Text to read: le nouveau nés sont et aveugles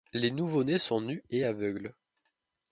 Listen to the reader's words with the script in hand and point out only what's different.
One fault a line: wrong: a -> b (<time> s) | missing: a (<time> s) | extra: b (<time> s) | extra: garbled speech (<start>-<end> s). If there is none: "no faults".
wrong: le -> les (0.1 s)
extra: nus (1.0 s)